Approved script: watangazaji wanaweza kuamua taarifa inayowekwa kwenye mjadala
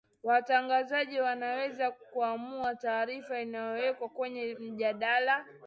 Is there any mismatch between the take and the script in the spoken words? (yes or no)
no